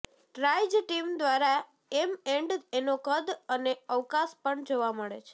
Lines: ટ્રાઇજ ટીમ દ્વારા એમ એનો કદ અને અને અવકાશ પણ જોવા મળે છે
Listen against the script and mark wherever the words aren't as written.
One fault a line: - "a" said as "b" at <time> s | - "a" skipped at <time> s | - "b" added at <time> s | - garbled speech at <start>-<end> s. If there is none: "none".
- "એન્ડ" added at 2.3 s
- "અને" skipped at 3.7 s